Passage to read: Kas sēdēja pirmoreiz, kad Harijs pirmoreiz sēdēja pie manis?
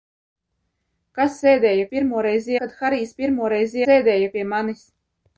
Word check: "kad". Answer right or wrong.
right